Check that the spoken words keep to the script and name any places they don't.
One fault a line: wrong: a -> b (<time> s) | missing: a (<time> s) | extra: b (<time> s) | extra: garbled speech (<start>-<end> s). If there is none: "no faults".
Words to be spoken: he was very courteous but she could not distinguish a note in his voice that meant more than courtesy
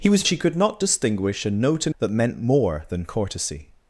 missing: very courteous but (0.2 s)
missing: his voice (1.9 s)